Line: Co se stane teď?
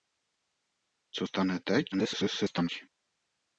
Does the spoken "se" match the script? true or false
false